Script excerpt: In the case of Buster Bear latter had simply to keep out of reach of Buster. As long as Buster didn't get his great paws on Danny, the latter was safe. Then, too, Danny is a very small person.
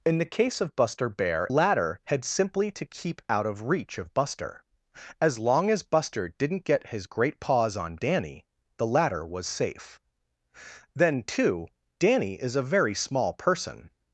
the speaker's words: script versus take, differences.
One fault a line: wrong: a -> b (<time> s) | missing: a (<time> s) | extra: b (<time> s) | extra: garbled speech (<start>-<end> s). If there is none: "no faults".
no faults